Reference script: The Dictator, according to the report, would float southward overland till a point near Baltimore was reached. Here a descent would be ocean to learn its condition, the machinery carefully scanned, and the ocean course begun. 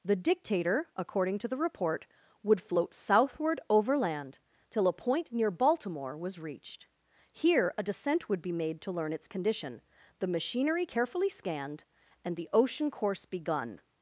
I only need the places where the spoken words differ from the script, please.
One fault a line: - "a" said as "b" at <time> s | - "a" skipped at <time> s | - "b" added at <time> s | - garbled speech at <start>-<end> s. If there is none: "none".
- "ocean" said as "made" at 8.5 s